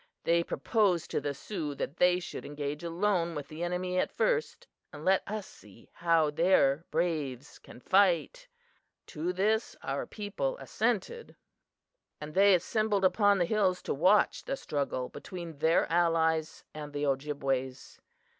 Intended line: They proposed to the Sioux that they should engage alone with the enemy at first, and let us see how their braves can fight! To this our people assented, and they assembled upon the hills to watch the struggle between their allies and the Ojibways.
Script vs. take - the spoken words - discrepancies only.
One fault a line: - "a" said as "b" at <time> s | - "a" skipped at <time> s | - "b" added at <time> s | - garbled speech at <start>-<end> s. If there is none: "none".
none